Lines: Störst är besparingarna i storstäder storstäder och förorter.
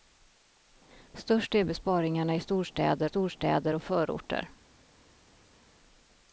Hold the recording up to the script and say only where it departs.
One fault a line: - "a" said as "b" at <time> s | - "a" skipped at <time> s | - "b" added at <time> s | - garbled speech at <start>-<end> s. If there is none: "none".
none